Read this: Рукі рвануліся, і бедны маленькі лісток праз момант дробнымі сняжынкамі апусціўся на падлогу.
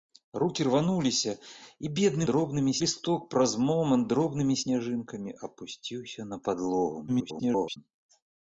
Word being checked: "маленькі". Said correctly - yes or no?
no